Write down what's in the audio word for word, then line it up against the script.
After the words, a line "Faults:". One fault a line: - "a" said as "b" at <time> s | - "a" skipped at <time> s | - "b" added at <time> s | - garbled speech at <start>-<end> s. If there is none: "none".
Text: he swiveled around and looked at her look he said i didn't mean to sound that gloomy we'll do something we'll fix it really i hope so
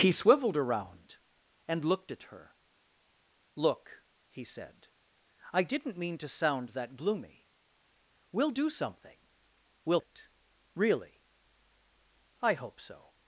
he swiveled around and looked at her look he said i didn't mean to sound that gloomy we'll do something we'll it really i hope so
Faults:
- "fix" skipped at 10.0 s